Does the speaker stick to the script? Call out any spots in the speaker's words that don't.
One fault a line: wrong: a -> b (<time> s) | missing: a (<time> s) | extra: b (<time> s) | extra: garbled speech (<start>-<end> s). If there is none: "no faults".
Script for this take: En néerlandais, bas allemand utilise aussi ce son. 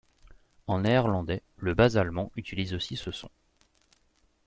extra: le (1.6 s)